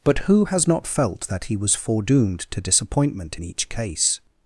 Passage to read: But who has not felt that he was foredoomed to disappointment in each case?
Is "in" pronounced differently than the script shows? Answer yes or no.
no